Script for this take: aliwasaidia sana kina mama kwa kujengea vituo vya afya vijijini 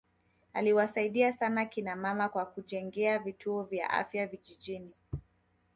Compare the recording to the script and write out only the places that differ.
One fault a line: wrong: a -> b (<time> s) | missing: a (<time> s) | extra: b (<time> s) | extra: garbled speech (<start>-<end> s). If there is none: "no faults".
no faults